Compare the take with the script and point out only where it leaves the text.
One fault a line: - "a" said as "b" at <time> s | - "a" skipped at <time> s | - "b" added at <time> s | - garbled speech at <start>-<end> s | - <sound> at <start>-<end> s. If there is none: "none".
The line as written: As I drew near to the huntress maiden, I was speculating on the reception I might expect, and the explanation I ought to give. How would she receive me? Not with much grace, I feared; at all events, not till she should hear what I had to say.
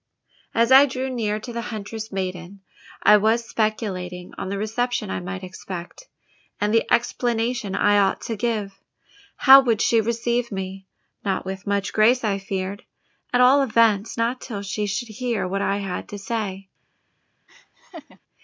- laugh at 17.5-18.2 s